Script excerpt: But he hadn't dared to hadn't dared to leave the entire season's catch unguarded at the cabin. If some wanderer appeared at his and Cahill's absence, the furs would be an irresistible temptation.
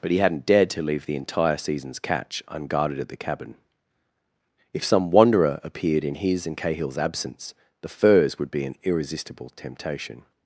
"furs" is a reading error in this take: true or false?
false